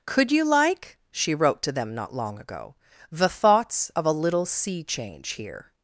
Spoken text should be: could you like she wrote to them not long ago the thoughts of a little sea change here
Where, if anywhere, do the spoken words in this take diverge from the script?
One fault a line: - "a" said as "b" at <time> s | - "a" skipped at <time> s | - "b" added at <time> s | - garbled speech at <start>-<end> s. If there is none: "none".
none